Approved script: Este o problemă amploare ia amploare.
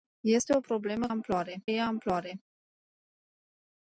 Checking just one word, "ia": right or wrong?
right